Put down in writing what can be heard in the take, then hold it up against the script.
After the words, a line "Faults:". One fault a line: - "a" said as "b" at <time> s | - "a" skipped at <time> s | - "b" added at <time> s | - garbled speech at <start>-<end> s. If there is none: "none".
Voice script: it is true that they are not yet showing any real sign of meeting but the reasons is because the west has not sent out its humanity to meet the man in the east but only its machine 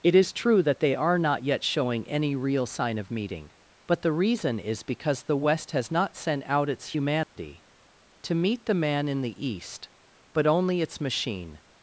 it is true that they are not yet showing any real sign of meeting but the reason is because the west has not sent out its humanity to meet the man in the east but only its machine
Faults:
- "reasons" said as "reason" at 4.1 s